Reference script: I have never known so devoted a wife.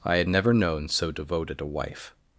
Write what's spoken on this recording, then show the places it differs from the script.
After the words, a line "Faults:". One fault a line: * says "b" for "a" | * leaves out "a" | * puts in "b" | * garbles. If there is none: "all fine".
I had never known so devoted a wife.
Faults:
* says "had" for "have"